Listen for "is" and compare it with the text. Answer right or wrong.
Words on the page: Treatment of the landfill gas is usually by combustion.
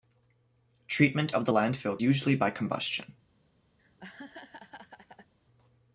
wrong